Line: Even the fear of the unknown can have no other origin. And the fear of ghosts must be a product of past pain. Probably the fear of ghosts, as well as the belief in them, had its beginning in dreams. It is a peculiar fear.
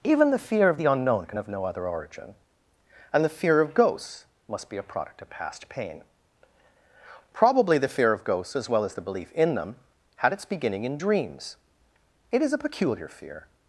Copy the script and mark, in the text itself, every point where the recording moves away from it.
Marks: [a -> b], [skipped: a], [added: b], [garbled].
Even the fear of the unknown can have no other origin. And the fear of ghosts must be a product of past pain. Probably the fear of ghosts, as well as the belief in them, had its beginning in dreams. It is a peculiar fear.